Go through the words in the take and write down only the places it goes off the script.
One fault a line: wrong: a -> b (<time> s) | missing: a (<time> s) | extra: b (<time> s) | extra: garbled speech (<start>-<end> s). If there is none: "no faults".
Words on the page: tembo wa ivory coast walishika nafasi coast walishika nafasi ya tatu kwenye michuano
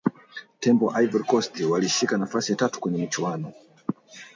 missing: coast walishika nafasi (2.5 s)